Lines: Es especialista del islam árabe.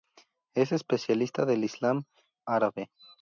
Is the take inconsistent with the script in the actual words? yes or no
no